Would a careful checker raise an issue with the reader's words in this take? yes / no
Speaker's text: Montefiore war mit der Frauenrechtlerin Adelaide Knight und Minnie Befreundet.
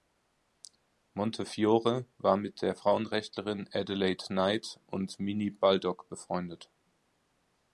yes